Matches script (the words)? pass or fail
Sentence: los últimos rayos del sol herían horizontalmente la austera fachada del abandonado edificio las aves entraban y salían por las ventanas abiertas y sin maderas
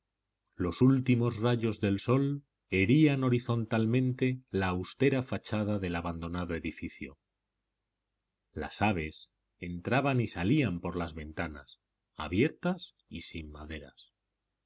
pass